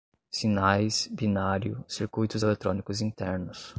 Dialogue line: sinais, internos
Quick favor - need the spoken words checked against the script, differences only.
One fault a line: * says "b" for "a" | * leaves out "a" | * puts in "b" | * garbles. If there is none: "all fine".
* puts in "binário circuitos eletrônicos"